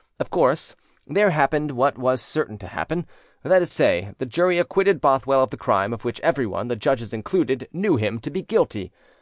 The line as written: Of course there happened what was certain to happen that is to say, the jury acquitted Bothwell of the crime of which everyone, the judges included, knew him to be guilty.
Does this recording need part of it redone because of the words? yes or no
yes